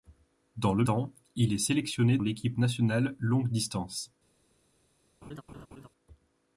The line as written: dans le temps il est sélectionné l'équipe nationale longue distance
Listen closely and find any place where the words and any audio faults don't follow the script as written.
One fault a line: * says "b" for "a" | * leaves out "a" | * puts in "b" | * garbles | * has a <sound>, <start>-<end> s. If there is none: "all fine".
* has a laugh, 5.2-5.9 s